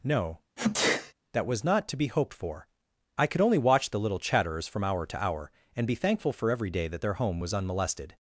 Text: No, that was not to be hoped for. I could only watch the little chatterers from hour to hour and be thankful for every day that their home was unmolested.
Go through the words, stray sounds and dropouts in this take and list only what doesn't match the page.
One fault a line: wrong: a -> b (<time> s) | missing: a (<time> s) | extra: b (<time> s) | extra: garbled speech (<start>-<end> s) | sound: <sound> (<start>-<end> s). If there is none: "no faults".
sound: sneeze (0.6-1.1 s)